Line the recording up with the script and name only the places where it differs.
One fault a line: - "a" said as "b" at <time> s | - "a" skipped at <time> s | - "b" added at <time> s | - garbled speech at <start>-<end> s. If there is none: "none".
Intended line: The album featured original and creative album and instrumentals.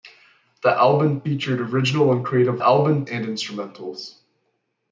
none